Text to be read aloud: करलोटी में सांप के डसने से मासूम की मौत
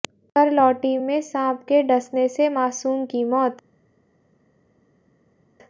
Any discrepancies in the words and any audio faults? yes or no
no